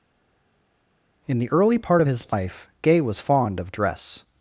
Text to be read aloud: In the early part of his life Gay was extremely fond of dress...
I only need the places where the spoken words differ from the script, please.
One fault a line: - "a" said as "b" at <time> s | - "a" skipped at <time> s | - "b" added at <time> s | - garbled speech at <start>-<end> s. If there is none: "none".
- "extremely" skipped at 3.2 s